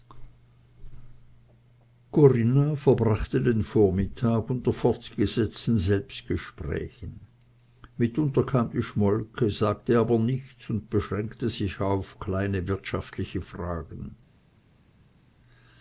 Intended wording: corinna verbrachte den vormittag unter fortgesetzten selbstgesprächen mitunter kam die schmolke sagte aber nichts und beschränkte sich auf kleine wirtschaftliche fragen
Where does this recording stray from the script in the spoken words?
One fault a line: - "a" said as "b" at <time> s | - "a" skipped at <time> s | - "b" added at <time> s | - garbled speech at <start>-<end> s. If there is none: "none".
none